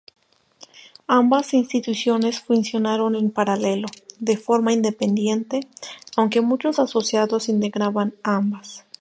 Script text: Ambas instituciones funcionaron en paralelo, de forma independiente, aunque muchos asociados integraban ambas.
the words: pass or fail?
pass